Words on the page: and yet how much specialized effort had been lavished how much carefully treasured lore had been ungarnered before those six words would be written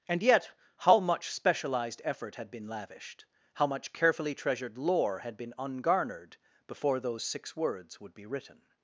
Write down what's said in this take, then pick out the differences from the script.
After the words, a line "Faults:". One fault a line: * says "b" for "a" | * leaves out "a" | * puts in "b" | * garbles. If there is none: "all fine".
and yet how much specialized effort had been lavished how much carefully treasured lore had been ungarnered before those six words would be written
Faults:
all fine